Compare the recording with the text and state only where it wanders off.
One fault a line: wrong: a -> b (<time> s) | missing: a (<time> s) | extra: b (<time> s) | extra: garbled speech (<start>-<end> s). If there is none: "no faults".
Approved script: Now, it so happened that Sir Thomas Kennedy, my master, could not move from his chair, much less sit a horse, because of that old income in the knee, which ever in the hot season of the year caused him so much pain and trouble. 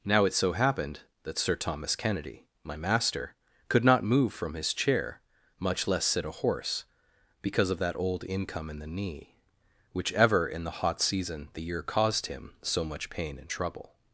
missing: of (11.5 s)